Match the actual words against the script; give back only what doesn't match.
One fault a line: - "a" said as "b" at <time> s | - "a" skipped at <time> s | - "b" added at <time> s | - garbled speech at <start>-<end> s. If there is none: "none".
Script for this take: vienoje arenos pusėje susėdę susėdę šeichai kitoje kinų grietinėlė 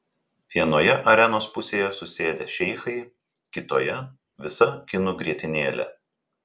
- "susėdę" skipped at 2.5 s
- "visa" added at 4.5 s